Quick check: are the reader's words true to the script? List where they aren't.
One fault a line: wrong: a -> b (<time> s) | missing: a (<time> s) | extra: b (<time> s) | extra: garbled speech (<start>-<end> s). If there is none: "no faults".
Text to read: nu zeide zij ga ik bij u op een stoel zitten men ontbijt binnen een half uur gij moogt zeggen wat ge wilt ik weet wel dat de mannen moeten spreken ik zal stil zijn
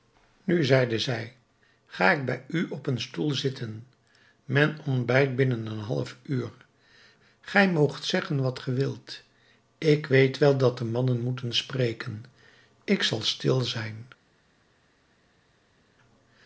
no faults